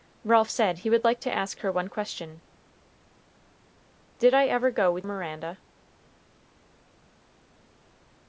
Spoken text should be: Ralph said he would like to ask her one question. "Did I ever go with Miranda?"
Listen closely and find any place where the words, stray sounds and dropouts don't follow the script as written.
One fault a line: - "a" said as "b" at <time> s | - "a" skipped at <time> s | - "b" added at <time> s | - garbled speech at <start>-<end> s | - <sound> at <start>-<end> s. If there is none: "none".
none